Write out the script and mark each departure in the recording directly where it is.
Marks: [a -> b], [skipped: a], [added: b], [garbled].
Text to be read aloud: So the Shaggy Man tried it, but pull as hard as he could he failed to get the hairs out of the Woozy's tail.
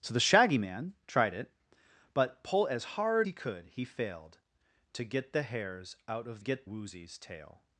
So the Shaggy Man tried it, but pull as hard [skipped: as] he could he failed to get the hairs out of [the -> get] Woozy's tail.